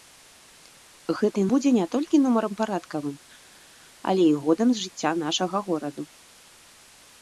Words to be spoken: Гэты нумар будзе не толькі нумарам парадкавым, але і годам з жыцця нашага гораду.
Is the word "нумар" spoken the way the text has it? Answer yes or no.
no